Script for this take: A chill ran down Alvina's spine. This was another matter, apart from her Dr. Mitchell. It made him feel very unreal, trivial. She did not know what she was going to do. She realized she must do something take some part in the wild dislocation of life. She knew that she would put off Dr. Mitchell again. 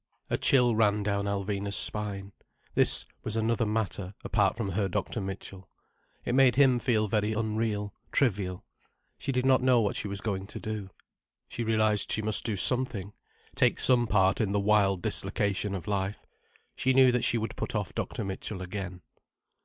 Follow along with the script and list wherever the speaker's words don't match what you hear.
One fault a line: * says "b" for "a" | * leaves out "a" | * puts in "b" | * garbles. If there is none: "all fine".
all fine